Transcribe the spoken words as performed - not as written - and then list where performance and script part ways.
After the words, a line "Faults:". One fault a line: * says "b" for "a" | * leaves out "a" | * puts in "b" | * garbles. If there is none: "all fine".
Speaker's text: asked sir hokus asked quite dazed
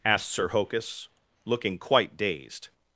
asked sir hokus looking quite dazed
Faults:
* says "looking" for "asked"